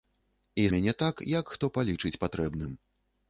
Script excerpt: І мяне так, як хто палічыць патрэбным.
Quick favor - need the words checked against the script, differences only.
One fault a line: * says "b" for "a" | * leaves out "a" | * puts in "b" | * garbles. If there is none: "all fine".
all fine